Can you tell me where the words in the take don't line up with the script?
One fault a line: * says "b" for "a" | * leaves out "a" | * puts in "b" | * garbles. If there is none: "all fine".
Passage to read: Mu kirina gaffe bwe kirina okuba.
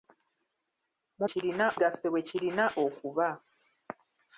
all fine